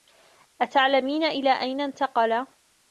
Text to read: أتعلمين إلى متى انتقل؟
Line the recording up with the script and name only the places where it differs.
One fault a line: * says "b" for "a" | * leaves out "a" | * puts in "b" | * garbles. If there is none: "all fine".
* says "أين" for "متى"